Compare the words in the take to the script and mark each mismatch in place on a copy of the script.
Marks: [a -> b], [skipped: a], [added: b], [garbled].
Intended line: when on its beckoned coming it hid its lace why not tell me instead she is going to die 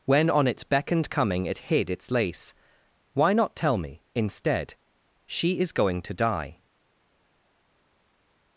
when on its beckoned coming it hid its lace why not tell me instead she is going to die